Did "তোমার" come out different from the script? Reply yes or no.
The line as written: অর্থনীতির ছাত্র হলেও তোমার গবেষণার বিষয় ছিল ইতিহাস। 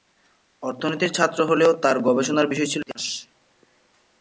yes